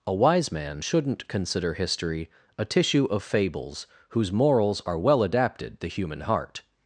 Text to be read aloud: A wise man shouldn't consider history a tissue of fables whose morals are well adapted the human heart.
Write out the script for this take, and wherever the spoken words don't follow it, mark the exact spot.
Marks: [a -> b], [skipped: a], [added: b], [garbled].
A wise man shouldn't consider history a tissue of fables whose morals are well adapted the human heart.